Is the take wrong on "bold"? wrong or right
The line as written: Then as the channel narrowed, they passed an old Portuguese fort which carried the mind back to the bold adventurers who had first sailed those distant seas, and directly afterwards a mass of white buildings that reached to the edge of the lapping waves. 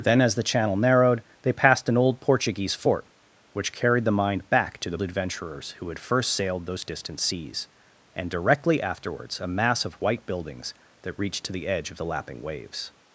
wrong